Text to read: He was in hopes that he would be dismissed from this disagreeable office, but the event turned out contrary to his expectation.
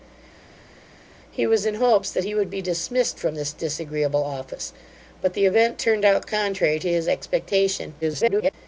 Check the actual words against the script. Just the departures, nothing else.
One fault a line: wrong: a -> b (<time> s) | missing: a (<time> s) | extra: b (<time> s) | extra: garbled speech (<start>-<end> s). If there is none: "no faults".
extra: garbled speech (8.0-8.5 s)